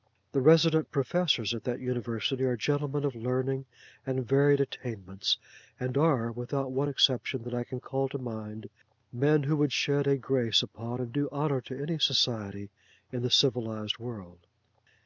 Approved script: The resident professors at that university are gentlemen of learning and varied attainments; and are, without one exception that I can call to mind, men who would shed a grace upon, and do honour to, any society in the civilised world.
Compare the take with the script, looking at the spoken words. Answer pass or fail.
pass